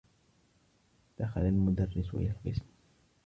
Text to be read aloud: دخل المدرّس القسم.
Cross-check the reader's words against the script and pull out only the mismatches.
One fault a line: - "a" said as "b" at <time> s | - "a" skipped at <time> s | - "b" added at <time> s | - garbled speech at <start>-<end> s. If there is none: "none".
- "إلى" added at 2.1 s